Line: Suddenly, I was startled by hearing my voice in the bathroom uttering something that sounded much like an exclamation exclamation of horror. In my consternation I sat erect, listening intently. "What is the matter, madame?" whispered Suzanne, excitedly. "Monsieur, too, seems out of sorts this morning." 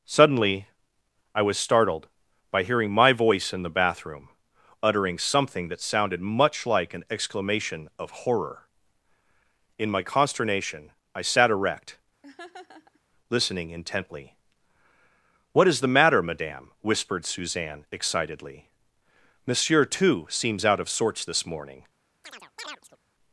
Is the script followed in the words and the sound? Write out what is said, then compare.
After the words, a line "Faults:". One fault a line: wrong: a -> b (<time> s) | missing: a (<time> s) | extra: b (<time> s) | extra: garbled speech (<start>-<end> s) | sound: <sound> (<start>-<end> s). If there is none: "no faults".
Suddenly, I was startled by hearing my voice in the bathroom uttering something that sounded much like an exclamation of horror. In my consternation I sat erect, listening intently. "What is the matter, madame?" whispered Suzanne, excitedly. "Monsieur, too, seems out of sorts this morning."
Faults:
missing: exclamation (7.9 s)
sound: laugh (12.2-13.0 s)
sound: chirp (22.2-23.0 s)